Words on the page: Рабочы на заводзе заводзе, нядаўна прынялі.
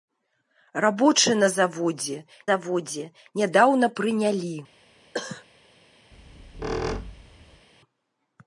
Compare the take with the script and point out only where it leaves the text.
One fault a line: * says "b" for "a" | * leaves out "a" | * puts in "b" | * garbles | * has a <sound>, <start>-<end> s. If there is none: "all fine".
* has a cough, 5.1-5.4 s
* has a squeak, 6.1-7.7 s